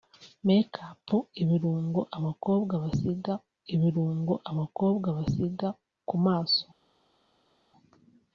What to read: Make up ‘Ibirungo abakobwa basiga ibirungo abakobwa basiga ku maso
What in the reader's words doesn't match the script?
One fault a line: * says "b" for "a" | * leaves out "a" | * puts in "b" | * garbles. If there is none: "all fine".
all fine